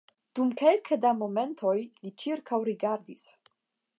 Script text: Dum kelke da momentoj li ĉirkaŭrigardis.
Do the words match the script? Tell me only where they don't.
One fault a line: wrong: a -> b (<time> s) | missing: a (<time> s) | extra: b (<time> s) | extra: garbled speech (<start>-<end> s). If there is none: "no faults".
no faults